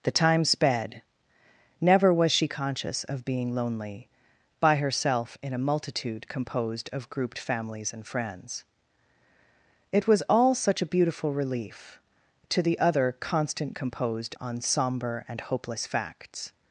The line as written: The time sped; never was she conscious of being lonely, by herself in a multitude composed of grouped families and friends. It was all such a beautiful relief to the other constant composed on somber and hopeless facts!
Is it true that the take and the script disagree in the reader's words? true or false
false